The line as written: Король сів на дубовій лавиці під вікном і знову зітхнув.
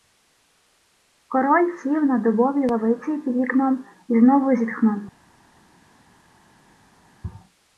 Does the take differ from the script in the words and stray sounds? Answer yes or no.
no